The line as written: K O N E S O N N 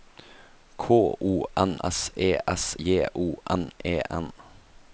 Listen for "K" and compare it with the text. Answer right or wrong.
right